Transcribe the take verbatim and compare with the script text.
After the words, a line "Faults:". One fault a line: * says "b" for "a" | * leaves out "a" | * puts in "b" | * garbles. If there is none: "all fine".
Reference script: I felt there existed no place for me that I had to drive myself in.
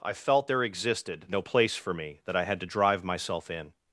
I felt there existed no place for me that I had to drive myself in.
Faults:
all fine